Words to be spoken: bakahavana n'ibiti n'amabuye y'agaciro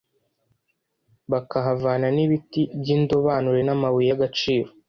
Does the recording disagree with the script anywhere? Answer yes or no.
yes